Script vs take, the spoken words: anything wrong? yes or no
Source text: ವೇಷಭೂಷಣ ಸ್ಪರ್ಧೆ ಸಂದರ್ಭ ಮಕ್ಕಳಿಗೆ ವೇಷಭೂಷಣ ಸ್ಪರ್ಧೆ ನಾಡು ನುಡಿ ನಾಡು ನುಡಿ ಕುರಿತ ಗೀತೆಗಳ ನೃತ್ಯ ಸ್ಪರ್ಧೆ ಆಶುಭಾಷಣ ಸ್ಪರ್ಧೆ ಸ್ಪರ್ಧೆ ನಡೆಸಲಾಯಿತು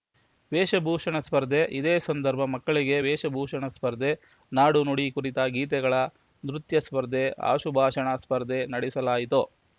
yes